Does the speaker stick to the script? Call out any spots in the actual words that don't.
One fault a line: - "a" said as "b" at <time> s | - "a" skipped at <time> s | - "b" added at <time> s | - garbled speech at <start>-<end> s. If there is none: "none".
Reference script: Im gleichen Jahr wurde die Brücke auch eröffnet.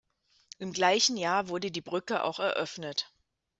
none